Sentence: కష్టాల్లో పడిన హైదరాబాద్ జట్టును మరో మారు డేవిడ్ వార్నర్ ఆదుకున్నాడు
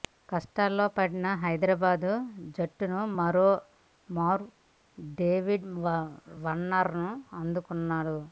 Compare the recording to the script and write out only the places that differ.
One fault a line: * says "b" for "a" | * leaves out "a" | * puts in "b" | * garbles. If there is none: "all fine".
all fine